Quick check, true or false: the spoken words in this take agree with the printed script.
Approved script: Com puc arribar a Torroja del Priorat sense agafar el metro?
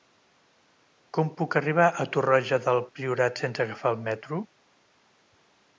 true